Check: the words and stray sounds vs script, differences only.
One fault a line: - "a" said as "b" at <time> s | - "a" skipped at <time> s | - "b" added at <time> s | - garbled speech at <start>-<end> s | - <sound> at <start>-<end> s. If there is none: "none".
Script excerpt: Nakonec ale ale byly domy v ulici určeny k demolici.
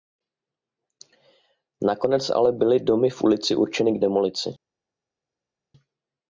- "ale" skipped at 2.5 s